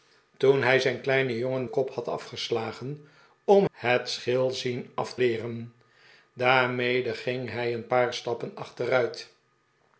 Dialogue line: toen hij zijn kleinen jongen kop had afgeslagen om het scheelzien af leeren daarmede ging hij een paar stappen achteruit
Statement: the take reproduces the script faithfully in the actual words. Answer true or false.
true